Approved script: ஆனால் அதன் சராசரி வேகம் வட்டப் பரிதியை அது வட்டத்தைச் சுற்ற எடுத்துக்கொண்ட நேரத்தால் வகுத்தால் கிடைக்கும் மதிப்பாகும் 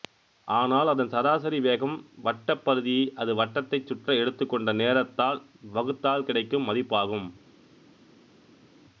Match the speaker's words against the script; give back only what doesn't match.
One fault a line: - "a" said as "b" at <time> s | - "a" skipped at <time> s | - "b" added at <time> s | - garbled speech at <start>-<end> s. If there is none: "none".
none